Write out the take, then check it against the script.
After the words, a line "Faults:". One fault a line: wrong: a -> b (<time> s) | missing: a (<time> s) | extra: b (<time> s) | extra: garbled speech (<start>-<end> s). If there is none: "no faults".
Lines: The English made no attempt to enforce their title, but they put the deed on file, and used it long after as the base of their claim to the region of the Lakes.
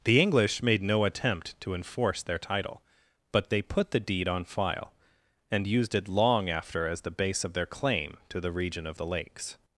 The English made no attempt to enforce their title, but they put the deed on file, and used it long after as the base of their claim to the region of the Lakes.
Faults:
no faults